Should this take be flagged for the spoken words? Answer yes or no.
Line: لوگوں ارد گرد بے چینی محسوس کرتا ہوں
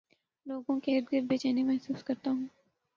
yes